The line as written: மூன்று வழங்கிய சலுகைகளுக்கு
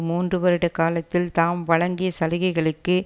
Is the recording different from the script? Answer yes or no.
yes